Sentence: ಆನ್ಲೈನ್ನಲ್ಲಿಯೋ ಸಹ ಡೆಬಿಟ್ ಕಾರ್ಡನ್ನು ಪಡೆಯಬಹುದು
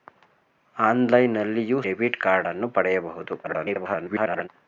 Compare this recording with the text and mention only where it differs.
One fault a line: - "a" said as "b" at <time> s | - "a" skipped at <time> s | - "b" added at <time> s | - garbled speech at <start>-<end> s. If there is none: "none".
- "ಸಹ" skipped at 1.8 s
- garbled speech at 3.4-4.5 s